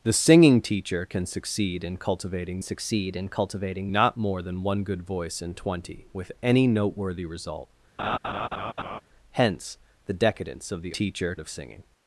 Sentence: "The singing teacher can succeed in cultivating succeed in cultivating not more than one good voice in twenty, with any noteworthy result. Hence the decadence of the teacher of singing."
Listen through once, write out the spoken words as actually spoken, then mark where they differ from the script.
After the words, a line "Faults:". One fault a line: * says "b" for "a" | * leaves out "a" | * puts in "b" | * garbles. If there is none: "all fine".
"The singing teacher can succeed in cultivating succeed in cultivating not more than one good voice in twenty, with any noteworthy result. Hence the decadence of the teacher of singing."
Faults:
all fine